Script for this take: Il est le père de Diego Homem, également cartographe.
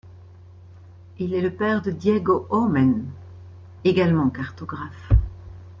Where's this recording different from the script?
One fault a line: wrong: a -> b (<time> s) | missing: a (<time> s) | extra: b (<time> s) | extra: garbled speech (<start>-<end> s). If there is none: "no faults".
no faults